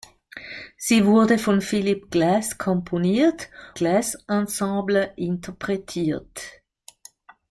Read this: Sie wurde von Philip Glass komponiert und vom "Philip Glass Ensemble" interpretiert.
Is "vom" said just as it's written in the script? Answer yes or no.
no